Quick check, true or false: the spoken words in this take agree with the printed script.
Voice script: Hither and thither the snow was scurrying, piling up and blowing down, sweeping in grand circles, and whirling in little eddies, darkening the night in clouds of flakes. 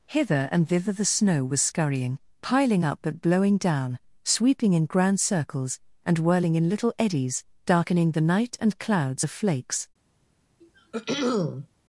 false